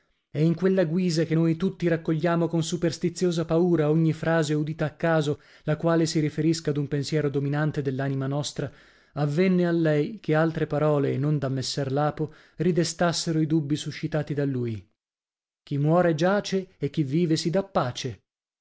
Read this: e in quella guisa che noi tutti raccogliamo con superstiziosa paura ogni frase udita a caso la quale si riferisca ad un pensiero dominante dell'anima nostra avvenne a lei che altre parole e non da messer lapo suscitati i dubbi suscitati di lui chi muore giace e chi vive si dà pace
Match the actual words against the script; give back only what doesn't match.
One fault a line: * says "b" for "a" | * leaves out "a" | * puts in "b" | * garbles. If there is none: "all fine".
* says "ridestassero" for "suscitati"
* says "da" for "di"